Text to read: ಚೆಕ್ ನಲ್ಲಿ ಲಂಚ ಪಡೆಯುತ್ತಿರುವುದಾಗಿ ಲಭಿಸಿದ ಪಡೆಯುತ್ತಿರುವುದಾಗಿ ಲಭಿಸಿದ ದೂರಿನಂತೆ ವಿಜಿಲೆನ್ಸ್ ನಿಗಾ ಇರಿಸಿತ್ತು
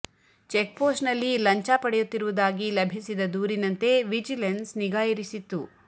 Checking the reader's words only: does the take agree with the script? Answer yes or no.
no